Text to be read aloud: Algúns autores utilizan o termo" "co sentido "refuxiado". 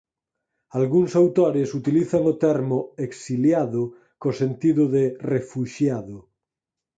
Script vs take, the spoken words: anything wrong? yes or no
yes